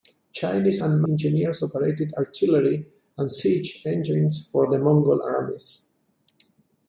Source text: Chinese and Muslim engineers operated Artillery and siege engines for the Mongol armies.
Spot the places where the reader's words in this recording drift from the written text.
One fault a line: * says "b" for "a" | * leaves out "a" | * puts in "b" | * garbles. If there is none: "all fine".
* leaves out "Muslim"